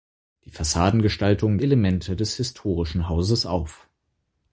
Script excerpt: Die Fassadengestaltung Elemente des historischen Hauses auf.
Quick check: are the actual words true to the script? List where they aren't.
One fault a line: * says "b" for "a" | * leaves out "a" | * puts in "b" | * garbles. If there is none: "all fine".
all fine